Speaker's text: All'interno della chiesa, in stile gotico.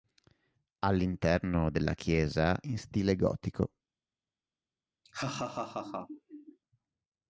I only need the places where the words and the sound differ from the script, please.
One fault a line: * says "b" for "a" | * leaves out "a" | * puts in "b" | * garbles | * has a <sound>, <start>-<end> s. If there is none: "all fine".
* has a laugh, 5.0-6.6 s